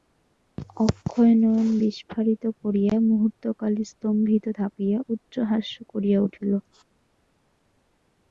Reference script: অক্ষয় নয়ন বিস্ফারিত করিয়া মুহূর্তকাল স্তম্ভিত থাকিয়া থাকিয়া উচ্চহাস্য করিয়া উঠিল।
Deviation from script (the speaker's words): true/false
true